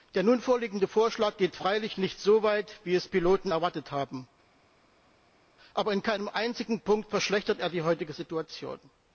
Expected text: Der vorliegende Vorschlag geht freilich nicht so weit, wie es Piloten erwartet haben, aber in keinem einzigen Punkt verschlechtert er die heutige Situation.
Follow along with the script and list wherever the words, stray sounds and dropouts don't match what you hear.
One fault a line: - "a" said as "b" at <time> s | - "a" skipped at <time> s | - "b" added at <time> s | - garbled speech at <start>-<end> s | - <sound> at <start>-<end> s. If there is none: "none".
- "nun" added at 0.2 s